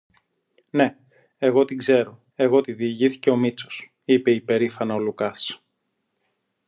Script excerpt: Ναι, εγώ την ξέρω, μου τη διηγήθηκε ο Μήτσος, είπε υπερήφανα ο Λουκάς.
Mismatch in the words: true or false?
true